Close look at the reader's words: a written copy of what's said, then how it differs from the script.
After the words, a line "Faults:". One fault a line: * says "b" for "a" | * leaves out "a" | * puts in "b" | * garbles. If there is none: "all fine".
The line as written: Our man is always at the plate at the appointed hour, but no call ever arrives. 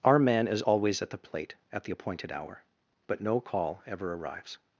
Our man is always at the plate at the appointed hour, but no call ever arrives.
Faults:
all fine